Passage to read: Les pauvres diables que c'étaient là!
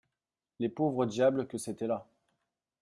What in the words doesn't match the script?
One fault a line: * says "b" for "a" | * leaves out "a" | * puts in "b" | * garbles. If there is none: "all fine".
all fine